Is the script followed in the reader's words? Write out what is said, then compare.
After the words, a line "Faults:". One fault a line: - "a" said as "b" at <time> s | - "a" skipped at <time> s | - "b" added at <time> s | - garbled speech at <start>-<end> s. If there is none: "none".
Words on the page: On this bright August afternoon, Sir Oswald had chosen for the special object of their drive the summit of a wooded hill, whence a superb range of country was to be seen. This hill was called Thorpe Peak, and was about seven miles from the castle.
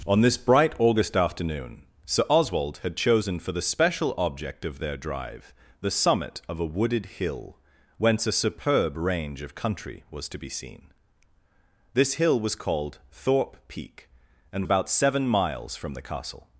On this bright August afternoon, Sir Oswald had chosen for the special object of their drive the summit of a wooded hill, whence a superb range of country was to be seen. This hill was called Thorpe Peak, and about seven miles from the castle.
Faults:
- "was" skipped at 14.7 s